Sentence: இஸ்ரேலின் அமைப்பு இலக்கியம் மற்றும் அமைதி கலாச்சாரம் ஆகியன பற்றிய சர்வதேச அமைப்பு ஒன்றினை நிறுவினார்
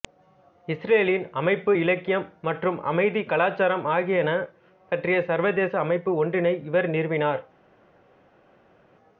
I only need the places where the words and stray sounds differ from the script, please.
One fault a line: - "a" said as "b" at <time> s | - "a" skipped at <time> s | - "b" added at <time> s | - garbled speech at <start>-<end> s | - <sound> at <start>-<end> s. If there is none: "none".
- "இவர்" added at 6.6 s